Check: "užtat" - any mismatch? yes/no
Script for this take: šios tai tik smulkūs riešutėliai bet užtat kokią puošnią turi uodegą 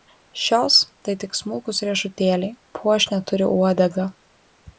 yes